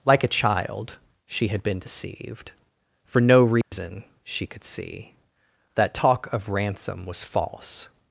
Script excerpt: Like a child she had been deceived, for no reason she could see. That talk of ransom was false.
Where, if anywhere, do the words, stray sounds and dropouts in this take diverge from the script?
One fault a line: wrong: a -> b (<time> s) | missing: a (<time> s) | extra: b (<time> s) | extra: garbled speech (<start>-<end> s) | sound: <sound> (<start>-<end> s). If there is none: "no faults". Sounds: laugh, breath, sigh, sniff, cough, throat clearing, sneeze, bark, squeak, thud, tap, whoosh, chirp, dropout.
sound: dropout (3.6-3.7 s)